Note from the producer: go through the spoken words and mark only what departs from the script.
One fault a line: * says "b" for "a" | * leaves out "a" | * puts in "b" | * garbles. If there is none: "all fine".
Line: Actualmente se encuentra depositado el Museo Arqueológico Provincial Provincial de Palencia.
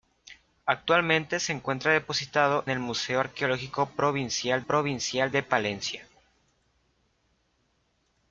all fine